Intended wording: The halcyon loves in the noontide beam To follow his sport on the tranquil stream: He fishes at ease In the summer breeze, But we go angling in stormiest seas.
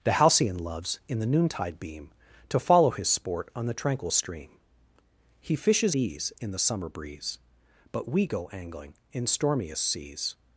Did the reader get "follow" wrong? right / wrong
right